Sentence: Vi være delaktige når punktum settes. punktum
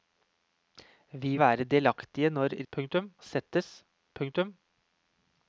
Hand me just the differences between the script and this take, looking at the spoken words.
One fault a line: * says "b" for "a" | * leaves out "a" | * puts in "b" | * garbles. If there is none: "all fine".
all fine